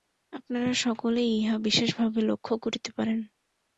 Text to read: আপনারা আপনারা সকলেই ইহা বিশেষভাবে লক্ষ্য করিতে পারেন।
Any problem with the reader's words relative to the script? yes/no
yes